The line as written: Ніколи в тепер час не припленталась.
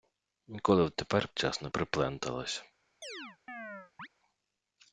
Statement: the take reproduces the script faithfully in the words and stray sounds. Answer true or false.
false